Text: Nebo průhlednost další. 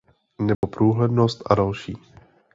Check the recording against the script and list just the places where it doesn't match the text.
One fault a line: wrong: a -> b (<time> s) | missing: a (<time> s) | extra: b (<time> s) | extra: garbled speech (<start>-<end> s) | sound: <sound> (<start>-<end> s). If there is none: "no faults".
sound: dropout (0.5-0.6 s)
extra: a (1.4 s)